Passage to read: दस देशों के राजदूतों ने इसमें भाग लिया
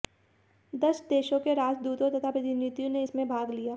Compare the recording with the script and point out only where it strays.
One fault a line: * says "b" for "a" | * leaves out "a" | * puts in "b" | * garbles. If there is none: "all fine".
* puts in "तथा प्रतिनिधियों"